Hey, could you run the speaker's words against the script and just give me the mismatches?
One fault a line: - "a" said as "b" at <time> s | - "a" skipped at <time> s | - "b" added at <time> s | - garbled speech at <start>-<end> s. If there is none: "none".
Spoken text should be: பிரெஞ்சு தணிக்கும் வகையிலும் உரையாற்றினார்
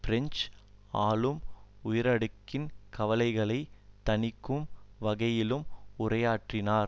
- "ஆளும் உயரடுக்கின் கவலைகளை" added at 1.0 s